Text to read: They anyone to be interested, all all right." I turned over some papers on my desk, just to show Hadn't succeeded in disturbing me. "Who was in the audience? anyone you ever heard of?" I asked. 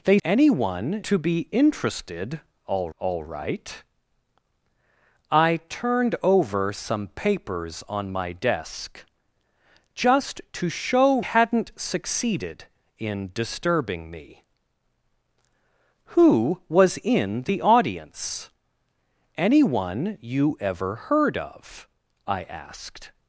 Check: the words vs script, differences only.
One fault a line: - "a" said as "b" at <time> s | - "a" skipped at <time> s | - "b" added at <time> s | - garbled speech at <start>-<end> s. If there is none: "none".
none